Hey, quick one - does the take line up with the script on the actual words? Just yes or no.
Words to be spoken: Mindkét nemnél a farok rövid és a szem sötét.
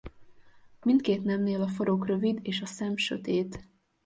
yes